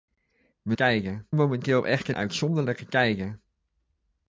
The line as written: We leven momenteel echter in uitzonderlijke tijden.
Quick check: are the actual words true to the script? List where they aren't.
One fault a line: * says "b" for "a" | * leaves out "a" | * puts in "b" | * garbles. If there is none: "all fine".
* says "tijden" for "leven"
* leaves out "in"